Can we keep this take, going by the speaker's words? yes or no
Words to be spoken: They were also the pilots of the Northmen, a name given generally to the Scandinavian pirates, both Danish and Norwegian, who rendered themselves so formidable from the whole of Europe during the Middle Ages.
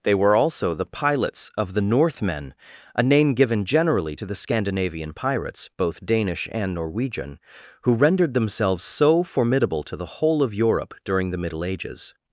no